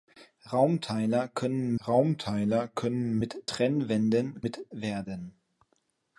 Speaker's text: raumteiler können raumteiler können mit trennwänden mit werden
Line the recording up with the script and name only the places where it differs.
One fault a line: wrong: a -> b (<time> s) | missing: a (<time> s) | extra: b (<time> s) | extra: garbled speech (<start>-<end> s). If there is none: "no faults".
no faults